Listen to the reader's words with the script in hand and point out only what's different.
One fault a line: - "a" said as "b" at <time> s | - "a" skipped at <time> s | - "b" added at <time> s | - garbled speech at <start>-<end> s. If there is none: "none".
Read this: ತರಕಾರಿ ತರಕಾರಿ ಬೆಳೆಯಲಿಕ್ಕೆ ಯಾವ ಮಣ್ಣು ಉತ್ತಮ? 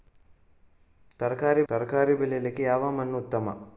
none